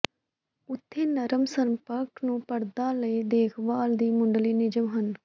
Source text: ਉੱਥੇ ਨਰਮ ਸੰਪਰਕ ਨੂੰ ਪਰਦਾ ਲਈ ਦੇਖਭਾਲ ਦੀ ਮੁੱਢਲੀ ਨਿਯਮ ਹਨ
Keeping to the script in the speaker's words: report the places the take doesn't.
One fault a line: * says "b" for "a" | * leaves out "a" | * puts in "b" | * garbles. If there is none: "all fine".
all fine